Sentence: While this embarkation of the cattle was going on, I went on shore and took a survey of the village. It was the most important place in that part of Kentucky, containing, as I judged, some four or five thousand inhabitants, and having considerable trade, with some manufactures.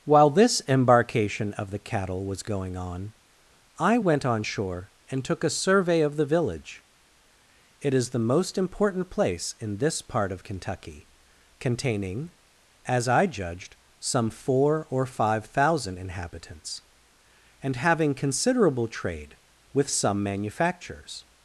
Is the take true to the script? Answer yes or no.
no